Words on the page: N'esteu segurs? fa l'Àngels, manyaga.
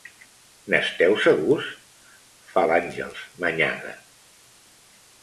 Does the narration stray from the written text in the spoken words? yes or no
no